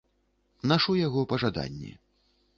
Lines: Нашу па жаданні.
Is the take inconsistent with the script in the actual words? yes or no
yes